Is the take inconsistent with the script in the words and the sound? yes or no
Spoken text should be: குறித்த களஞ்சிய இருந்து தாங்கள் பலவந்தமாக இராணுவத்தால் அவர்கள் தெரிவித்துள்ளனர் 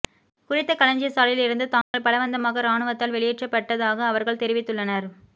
yes